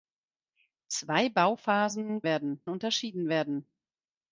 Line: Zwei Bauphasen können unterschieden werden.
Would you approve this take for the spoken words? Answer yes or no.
no